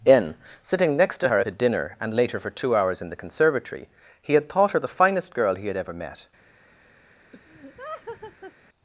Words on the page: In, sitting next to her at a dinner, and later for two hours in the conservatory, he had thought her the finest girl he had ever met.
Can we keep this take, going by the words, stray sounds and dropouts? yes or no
no